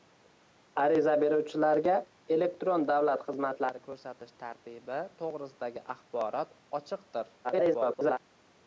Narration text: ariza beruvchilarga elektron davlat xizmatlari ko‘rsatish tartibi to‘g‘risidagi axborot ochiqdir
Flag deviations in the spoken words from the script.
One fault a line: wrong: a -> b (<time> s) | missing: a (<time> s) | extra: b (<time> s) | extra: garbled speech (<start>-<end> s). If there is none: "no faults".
extra: garbled speech (7.4-8.2 s)